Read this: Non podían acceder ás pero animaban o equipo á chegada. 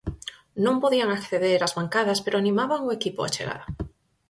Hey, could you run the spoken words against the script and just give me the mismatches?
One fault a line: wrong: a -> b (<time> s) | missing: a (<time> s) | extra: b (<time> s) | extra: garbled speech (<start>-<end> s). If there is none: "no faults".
extra: bancadas (1.8 s)